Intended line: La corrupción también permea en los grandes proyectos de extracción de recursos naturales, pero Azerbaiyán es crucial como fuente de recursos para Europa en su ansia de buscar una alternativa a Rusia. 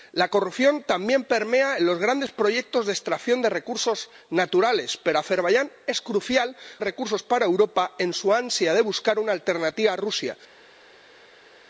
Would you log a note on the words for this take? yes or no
yes